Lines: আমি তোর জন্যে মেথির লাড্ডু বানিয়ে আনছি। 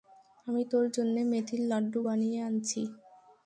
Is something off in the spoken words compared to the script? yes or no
no